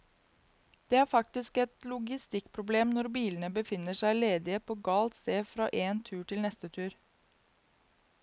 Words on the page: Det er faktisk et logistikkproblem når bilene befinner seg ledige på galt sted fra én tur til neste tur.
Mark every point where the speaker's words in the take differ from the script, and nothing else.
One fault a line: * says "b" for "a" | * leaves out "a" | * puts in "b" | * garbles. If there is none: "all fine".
all fine